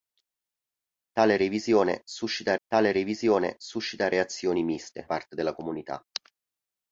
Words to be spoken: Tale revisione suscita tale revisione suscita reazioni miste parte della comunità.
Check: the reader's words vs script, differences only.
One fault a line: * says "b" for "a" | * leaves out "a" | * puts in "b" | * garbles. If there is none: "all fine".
all fine